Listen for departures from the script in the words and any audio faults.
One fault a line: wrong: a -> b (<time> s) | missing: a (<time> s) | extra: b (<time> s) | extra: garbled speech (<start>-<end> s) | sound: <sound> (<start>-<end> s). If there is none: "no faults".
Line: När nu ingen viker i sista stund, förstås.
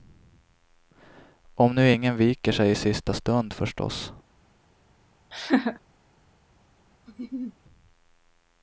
wrong: När -> Om (1.6 s)
extra: sig (2.5 s)
sound: laugh (5.3-5.8 s)
sound: laugh (7.1-7.6 s)